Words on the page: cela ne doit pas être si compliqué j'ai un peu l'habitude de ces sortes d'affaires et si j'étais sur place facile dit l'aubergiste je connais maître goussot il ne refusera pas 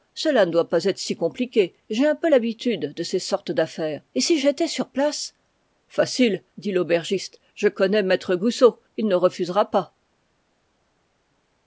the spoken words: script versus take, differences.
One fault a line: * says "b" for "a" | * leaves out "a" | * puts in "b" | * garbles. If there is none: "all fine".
all fine